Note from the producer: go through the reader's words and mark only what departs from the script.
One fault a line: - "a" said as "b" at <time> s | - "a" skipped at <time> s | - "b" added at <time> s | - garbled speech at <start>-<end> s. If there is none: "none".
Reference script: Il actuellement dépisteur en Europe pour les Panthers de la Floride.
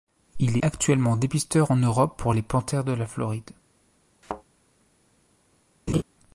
none